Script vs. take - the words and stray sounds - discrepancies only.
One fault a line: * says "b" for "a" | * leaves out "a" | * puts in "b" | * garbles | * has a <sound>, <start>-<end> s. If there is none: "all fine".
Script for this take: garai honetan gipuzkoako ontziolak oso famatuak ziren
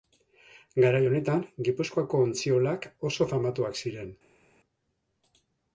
all fine